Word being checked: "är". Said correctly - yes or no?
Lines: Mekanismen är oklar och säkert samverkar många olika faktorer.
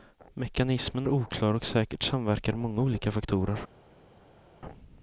no